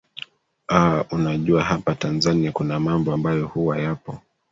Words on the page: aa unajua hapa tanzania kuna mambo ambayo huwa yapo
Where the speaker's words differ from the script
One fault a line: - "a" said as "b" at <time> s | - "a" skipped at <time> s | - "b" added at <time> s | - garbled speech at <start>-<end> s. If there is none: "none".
none